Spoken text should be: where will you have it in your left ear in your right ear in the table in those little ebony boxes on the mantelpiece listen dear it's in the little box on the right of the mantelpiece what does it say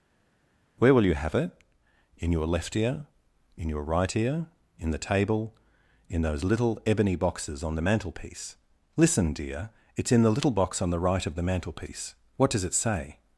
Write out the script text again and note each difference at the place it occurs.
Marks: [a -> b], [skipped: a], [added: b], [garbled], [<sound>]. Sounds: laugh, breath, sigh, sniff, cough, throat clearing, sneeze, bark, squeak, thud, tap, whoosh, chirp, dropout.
where will you have it in your left ear in your right ear in the table in those little ebony boxes on the mantelpiece listen dear it's in the little box on the right of the mantelpiece what does it say